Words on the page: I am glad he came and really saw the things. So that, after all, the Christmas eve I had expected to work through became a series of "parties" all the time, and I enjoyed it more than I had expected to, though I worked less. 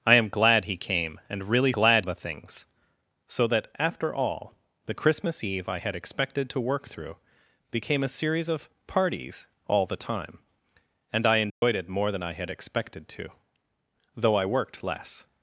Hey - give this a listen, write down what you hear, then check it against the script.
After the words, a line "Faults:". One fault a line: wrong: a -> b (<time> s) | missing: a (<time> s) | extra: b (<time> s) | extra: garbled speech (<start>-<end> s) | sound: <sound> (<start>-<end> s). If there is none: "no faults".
I am glad he came and really glad the things. So that, after all, the Christmas eve I had expected to work through became a series of "parties" all the time, and I enjoyed it more than I had expected to, though I worked less.
Faults:
wrong: saw -> glad (1.7 s)
sound: dropout (11.5-11.6 s)